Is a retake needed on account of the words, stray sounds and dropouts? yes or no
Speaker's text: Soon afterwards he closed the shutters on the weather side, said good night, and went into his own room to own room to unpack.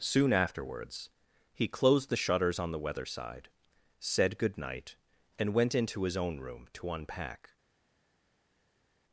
yes